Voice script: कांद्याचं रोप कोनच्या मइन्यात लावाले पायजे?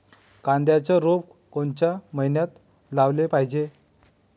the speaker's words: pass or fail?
pass